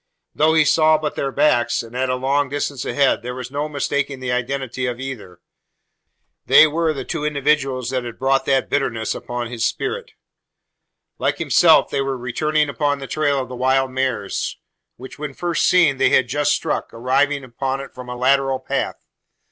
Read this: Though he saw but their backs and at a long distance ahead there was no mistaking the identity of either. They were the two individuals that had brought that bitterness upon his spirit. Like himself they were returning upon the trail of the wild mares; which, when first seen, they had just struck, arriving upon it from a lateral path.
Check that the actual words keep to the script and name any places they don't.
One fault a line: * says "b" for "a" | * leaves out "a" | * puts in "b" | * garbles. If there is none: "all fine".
all fine